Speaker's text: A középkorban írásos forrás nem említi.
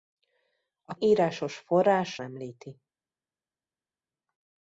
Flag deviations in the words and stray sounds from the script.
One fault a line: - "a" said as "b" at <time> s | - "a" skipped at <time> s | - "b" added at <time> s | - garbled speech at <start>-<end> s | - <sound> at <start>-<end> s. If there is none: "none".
- "középkorban" skipped at 1.0 s
- "nem" skipped at 2.2 s